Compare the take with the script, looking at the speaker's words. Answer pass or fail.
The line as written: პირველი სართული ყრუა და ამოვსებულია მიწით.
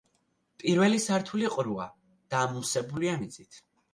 pass